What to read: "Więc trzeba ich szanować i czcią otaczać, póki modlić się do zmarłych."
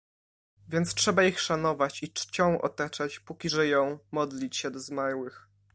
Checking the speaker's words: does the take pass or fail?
fail